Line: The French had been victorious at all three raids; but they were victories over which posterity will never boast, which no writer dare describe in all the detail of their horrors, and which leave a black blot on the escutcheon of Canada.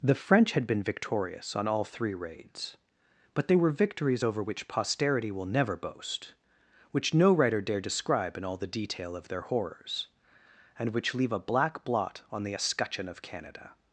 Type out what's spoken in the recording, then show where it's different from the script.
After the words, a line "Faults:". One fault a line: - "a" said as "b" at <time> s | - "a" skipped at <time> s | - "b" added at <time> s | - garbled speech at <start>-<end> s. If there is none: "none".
The French had been victorious on all three raids; but they were victories over which posterity will never boast, which no writer dare describe in all the detail of their horrors, and which leave a black blot on the escutcheon of Canada.
Faults:
- "at" said as "on" at 1.6 s